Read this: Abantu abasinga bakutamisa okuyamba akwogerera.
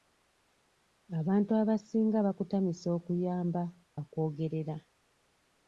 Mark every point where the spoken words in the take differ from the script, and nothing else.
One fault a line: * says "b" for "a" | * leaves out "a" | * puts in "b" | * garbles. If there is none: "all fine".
all fine